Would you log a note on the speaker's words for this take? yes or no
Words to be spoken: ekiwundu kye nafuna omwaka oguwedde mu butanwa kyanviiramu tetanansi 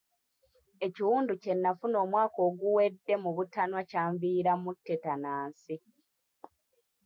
no